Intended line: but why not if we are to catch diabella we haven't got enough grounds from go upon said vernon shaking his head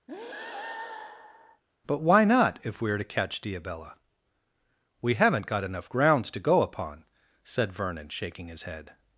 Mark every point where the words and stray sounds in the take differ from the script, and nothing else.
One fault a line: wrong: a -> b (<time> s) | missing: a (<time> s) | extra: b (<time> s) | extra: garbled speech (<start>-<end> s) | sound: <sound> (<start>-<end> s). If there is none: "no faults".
sound: breath (0.1-1.6 s)
wrong: from -> to (6.3 s)